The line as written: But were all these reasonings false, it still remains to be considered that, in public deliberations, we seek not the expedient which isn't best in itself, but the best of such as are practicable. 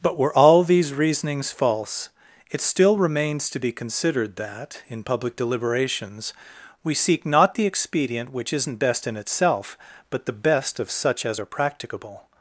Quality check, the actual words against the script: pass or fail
pass